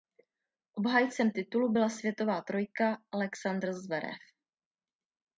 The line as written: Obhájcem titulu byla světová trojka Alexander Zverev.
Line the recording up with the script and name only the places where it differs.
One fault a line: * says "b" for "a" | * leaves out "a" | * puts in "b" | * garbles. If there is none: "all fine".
all fine